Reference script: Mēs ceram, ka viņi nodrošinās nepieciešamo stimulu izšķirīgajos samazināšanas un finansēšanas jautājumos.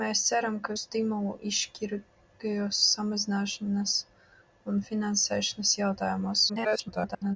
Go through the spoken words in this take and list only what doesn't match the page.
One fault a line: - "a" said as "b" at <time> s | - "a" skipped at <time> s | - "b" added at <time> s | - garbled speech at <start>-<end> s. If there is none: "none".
- "viņi nodrošinās nepieciešamo" skipped at 0.8 s
- garbled speech at 6.5-7.4 s